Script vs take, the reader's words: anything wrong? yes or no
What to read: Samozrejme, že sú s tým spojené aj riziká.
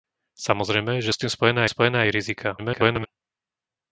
yes